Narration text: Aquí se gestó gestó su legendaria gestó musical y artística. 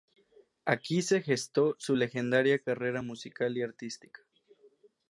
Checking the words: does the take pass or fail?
fail